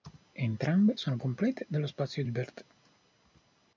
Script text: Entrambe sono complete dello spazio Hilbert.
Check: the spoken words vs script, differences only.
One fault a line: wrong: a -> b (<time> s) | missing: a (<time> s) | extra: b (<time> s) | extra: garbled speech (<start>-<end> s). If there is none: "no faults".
no faults